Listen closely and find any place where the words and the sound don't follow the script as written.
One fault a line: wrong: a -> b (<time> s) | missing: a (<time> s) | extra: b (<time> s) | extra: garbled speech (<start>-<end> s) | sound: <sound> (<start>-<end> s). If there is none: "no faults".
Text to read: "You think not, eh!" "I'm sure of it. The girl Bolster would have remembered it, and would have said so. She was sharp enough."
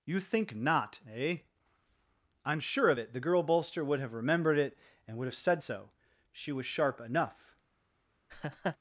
sound: laugh (8.3-8.8 s)